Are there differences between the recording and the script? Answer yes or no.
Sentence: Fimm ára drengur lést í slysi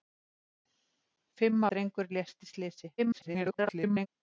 yes